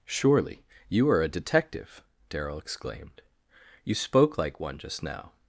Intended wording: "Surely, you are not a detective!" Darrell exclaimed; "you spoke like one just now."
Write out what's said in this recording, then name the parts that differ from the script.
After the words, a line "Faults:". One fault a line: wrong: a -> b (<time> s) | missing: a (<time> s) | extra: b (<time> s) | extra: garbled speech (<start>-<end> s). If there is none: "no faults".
"Surely, you are a detective!" Darrell exclaimed; "you spoke like one just now."
Faults:
missing: not (1.2 s)